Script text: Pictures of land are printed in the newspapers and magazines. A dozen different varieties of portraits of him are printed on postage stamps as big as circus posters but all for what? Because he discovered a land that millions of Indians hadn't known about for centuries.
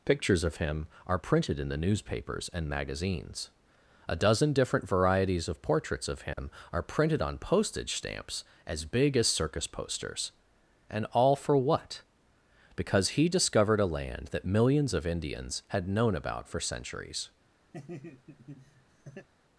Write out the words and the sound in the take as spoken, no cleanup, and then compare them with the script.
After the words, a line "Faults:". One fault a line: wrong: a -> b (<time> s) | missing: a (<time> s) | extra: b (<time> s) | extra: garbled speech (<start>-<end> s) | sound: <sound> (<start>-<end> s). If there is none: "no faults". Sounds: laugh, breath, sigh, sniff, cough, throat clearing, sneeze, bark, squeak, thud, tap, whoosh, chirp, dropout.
Pictures of him are printed in the newspapers and magazines. A dozen different varieties of portraits of him are printed on postage stamps as big as circus posters and all for what? Because he discovered a land that millions of Indians had known about for centuries.
Faults:
wrong: land -> him (0.6 s)
sound: dropout (6.3-6.4 s)
wrong: but -> and (10.9 s)
wrong: hadn't -> had (15.7 s)
sound: laugh (17.7-19.3 s)